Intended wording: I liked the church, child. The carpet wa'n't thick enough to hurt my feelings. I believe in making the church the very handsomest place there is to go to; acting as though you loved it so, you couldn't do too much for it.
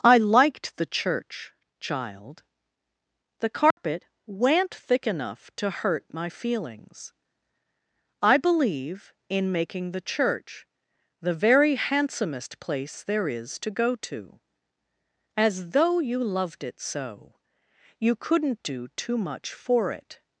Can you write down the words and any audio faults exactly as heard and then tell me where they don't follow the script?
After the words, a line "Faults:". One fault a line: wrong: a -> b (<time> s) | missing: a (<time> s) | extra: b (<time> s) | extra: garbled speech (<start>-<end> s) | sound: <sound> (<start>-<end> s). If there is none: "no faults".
I liked the church, child. The carpet wa'n't thick enough to hurt my feelings. I believe in making the church the very handsomest place there is to go to; as though you loved it so, you couldn't do too much for it.
Faults:
sound: dropout (3.7-3.8 s)
missing: acting (14.4 s)